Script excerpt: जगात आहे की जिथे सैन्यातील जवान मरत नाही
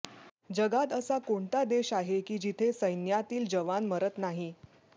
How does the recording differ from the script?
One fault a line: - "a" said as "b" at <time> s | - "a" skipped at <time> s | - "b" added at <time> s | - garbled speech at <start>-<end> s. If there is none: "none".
- "असा कोणता देश" added at 0.9 s